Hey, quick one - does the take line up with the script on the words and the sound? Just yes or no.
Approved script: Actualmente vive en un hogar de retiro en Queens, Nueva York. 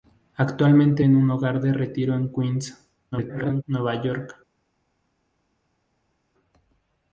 no